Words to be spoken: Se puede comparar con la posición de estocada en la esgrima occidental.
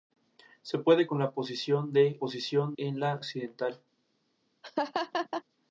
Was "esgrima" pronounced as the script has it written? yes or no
no